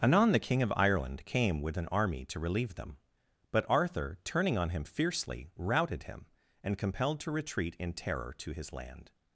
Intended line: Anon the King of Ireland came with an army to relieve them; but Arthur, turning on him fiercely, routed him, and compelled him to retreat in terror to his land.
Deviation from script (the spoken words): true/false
true